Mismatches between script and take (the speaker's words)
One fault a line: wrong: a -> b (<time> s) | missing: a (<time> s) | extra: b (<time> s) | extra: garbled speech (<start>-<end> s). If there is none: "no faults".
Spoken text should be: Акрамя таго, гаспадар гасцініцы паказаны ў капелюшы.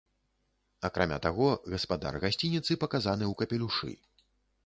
no faults